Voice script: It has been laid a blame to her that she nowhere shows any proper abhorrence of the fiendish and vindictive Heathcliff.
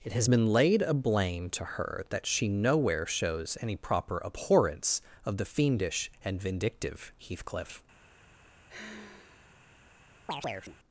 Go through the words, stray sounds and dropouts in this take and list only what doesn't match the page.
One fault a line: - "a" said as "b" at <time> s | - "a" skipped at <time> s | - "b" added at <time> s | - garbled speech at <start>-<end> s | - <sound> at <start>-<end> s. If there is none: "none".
- sigh at 8.7-9.6 s
- chirp at 10.3-10.8 s